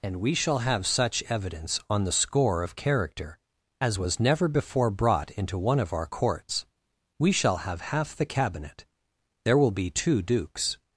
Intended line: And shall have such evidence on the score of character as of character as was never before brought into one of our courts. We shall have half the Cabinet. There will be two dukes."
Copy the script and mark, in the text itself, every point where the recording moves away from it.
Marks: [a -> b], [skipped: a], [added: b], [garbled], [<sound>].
And [added: we] shall have such evidence on the score of character as [skipped: of character as] was never before brought into one of our courts. We shall have half the Cabinet. There will be two dukes."